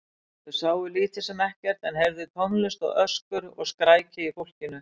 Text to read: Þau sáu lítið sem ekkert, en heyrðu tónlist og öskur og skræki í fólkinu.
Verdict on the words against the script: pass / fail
pass